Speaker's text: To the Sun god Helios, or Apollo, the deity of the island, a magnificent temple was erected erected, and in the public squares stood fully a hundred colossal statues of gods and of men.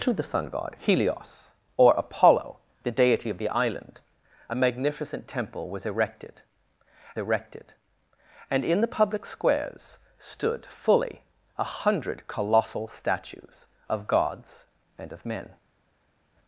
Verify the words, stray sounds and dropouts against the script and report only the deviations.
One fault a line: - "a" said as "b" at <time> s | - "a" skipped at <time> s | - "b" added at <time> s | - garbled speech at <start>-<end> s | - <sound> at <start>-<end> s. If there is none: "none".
none